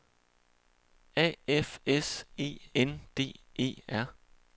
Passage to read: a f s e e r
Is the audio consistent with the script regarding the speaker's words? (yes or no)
no